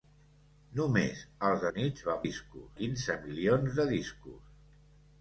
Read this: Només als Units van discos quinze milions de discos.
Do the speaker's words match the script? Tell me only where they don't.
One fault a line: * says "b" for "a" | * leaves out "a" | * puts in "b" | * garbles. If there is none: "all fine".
all fine